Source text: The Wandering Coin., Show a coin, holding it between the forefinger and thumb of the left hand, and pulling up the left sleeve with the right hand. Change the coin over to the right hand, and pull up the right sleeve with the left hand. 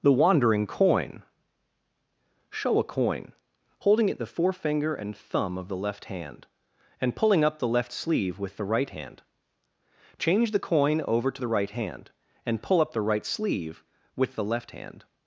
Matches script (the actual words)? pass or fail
fail